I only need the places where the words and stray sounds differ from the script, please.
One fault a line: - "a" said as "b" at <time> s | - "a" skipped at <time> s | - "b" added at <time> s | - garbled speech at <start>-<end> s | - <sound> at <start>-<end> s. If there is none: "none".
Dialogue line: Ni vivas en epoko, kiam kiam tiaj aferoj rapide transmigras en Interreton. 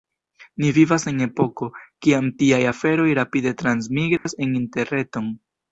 - "kiam" skipped at 2.3 s
- dropout at 4.2-4.3 s